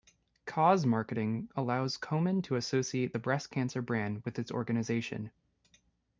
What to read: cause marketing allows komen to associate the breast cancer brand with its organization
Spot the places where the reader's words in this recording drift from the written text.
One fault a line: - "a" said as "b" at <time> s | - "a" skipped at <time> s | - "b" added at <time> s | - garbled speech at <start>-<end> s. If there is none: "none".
none